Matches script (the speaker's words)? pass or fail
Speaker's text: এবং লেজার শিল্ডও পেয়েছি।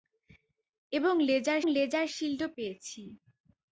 fail